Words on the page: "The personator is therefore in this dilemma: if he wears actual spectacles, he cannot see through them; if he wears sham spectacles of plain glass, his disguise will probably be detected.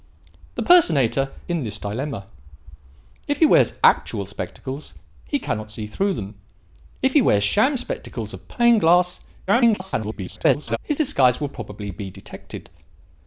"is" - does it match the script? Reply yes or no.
no